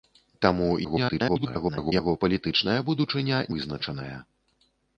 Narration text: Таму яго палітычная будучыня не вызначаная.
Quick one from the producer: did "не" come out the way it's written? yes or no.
no